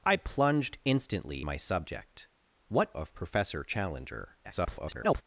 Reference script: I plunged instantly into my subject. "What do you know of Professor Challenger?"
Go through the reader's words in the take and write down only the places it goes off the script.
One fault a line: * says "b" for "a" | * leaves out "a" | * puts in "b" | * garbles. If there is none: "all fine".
* leaves out "into"
* leaves out "do you know"
* garbles